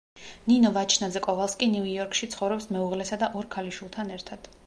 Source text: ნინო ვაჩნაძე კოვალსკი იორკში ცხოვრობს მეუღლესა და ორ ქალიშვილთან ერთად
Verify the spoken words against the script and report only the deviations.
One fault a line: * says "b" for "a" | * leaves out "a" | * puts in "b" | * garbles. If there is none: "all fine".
* puts in "ნიუ"